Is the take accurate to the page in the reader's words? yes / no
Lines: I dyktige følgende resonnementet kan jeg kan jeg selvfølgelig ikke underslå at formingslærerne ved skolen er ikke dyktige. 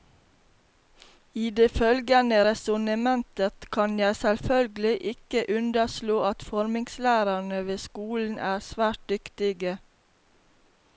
no